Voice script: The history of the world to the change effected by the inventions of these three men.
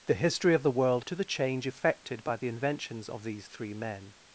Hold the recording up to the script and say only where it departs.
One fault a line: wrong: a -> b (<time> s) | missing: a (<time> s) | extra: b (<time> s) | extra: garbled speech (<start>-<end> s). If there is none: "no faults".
no faults